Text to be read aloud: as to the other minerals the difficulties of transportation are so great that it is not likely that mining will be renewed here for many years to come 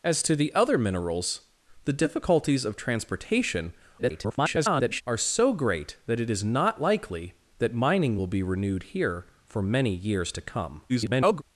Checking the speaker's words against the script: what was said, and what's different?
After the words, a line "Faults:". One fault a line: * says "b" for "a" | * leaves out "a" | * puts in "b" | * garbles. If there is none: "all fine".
as to the other minerals the difficulties of transportation [garbled] are so great that it is not likely that mining will be renewed here for many years to come [garbled]
Faults:
* garbles
* garbles